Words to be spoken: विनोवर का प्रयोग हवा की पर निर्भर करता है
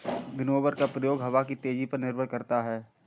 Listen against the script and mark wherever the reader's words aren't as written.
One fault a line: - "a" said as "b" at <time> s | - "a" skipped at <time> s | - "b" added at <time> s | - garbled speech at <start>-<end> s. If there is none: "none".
- "तेजी" added at 1.6 s